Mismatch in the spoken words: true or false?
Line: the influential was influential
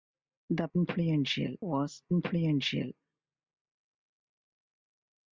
false